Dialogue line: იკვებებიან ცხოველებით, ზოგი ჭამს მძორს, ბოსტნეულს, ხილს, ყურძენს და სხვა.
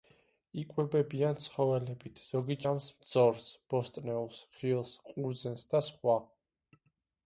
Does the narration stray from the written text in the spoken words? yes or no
no